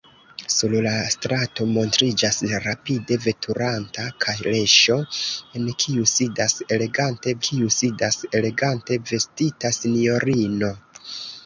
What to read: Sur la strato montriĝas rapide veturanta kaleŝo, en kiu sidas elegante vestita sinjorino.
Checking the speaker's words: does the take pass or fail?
fail